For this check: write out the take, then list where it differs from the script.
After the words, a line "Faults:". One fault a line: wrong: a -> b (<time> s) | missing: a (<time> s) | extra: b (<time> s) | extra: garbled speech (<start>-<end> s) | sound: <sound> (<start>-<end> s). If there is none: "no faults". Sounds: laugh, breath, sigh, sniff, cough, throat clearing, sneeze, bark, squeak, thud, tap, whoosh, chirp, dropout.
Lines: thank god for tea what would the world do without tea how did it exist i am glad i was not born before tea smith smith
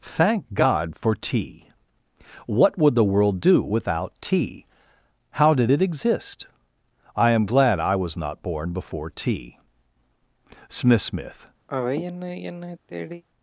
thank god for tea what would the world do without tea how did it exist i am glad i was not born before tea smith smith
Faults:
sound: sigh (11.7-13.2 s)